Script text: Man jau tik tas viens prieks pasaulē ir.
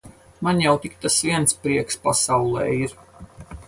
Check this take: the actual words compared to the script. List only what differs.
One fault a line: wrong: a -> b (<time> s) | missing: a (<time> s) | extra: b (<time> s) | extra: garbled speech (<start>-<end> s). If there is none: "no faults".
no faults